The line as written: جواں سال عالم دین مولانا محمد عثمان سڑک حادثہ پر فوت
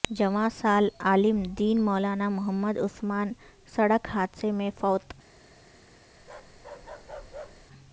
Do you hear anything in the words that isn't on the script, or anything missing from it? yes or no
yes